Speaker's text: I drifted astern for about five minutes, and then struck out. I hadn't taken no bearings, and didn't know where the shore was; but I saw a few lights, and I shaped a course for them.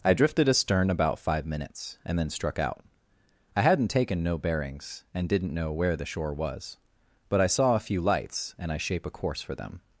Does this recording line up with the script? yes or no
no